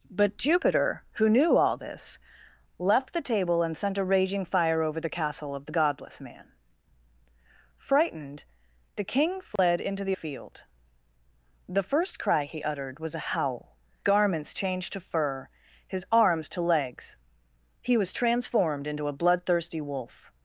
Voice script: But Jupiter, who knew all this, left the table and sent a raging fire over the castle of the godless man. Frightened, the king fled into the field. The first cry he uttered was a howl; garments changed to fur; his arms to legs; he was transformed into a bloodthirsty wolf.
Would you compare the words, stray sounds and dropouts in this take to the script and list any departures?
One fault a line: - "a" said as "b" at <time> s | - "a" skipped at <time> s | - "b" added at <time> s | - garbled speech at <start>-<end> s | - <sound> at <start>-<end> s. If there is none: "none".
- dropout at 9.6-9.6 s